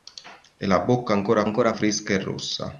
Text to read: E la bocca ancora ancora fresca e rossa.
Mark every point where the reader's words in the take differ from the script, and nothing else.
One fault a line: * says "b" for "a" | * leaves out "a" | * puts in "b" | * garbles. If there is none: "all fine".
all fine